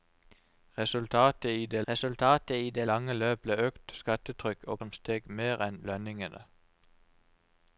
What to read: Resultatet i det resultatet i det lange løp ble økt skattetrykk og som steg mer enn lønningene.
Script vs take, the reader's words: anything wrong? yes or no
no